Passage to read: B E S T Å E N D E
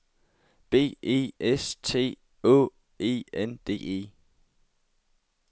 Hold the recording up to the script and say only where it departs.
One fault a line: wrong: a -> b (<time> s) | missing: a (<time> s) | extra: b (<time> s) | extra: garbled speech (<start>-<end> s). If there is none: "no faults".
no faults